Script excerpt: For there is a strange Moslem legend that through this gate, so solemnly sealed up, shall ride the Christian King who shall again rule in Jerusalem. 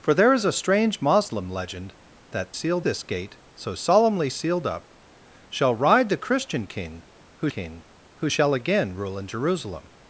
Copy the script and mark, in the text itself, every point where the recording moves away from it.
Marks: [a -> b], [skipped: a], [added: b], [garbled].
For there is a strange Moslem legend that [through -> sealed] this gate, so solemnly sealed up, shall ride the Christian King who [added: King who] shall again rule in Jerusalem.